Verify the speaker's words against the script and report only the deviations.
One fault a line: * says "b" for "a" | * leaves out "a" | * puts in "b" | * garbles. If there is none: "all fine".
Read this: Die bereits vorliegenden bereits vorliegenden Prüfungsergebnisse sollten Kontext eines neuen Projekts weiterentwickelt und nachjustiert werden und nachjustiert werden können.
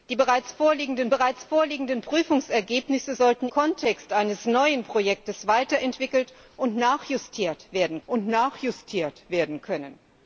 all fine